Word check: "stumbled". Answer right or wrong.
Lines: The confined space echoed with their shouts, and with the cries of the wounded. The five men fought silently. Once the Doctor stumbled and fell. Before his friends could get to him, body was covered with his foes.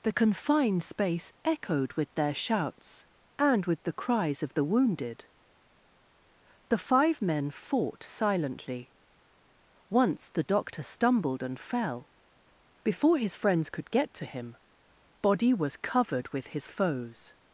right